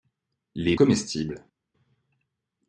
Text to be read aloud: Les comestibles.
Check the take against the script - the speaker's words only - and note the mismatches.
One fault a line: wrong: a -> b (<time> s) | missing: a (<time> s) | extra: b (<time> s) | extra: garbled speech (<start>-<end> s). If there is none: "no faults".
no faults